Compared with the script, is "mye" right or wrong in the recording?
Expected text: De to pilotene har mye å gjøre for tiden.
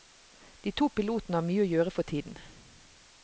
right